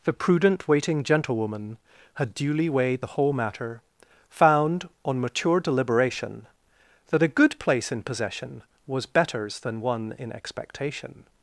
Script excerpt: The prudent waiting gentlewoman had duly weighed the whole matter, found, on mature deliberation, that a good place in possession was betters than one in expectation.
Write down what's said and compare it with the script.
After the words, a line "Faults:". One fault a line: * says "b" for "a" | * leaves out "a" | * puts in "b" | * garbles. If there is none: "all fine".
The prudent waiting gentlewoman had duly weighed the whole matter, found, on mature deliberation, that a good place in possession was betters than one in expectation.
Faults:
all fine